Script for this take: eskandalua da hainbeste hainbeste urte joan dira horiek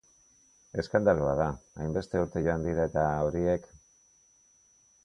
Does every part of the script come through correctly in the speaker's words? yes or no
no